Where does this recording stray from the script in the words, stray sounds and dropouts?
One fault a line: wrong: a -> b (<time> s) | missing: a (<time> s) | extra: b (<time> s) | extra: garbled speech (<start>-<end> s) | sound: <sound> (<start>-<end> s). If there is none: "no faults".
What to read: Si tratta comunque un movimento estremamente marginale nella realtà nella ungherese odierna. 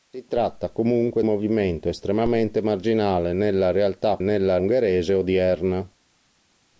no faults